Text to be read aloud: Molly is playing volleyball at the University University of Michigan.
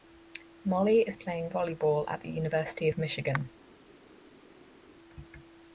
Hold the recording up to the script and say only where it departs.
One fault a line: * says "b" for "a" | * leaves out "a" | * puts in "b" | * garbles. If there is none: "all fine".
* leaves out "University"